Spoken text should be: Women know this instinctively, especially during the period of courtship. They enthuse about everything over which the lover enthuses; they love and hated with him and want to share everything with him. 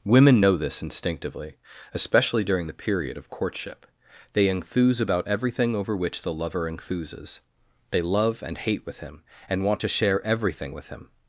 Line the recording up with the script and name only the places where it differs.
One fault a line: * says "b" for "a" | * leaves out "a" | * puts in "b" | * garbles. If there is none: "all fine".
* says "hate" for "hated"